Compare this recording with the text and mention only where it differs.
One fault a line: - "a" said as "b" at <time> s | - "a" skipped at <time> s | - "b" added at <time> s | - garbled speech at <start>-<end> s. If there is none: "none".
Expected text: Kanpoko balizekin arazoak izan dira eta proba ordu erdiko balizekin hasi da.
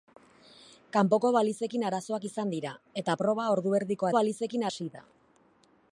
none